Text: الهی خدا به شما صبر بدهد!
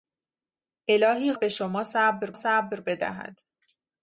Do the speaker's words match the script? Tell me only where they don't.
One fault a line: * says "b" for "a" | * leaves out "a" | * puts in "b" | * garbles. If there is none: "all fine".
* leaves out "خدا"
* puts in "صبر"